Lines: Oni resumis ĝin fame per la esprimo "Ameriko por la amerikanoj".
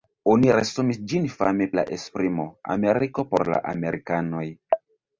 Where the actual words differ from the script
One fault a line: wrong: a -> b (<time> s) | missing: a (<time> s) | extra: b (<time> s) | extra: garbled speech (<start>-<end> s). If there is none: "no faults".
missing: per (1.7 s)